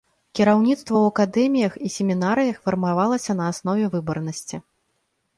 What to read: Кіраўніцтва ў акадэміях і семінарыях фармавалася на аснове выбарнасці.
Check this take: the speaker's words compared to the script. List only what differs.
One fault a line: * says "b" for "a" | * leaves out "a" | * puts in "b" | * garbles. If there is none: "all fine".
all fine